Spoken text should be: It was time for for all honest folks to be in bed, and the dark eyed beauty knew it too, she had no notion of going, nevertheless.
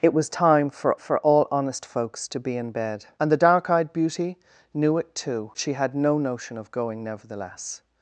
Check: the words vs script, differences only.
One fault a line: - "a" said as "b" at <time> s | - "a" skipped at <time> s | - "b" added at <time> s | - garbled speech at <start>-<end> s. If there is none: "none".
none